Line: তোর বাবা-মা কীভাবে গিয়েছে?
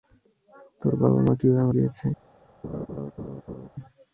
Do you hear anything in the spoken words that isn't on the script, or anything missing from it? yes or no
no